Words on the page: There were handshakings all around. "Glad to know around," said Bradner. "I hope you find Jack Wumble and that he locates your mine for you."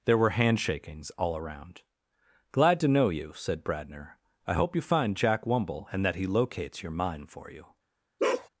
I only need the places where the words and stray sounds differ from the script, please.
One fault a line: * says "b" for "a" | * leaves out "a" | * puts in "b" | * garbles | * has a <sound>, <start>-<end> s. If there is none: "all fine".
* says "you" for "around"
* has a bark, 8.2-8.5 s